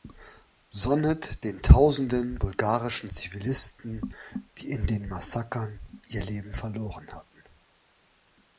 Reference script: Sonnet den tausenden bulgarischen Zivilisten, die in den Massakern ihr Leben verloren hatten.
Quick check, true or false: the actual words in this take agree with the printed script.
true